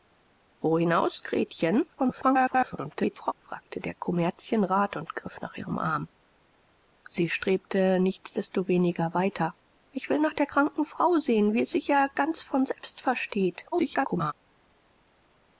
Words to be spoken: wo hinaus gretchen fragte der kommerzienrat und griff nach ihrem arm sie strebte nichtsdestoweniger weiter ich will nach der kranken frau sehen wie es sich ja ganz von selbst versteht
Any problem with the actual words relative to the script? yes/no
yes